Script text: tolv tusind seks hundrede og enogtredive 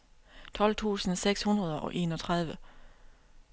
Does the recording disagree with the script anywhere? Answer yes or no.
no